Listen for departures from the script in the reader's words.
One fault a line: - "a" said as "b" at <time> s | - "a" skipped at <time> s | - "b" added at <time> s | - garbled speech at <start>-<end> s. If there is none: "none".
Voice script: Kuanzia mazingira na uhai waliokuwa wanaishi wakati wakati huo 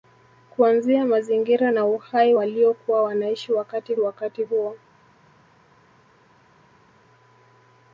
none